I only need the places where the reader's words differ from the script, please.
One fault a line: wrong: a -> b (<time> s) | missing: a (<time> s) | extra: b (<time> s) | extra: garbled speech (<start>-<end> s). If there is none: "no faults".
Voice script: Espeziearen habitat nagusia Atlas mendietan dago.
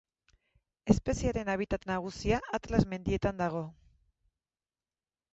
no faults